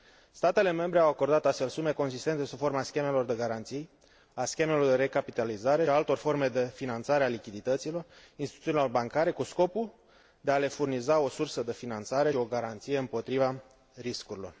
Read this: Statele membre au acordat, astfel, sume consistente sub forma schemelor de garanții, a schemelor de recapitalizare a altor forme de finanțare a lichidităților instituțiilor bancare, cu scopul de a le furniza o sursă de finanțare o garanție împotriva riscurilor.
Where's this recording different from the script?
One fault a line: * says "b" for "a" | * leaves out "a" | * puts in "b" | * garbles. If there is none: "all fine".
all fine